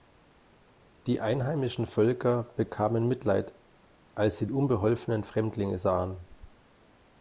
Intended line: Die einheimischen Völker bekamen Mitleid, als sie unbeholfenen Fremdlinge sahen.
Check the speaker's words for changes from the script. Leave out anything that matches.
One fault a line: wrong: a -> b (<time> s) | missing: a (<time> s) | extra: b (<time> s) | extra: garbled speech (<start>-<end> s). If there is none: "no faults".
no faults